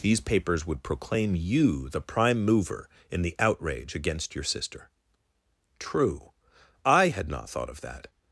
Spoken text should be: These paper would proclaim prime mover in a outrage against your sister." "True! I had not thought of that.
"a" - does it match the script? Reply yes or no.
no